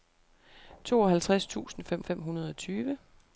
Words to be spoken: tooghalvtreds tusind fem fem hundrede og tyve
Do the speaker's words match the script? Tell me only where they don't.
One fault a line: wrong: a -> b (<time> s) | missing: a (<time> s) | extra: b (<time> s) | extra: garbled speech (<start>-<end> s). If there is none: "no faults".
no faults